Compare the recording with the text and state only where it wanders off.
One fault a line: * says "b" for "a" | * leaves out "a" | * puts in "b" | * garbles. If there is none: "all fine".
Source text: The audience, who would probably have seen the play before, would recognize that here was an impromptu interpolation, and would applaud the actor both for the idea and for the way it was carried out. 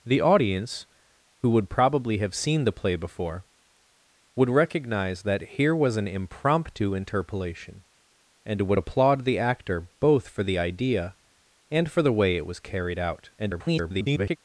* garbles